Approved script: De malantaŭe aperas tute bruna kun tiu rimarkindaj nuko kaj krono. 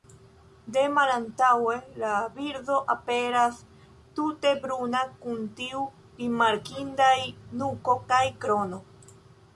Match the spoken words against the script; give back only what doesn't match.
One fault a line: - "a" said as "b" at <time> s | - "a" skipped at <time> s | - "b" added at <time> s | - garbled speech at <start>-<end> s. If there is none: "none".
- "la birdo" added at 2.0 s